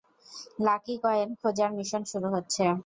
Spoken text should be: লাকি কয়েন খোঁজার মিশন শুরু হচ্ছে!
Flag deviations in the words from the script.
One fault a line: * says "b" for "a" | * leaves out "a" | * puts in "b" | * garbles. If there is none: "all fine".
all fine